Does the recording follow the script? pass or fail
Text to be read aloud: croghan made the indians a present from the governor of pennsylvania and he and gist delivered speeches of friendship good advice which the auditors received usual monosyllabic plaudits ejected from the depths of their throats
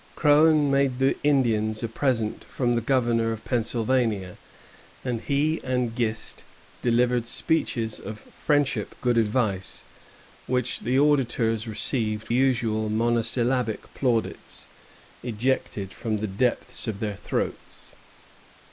pass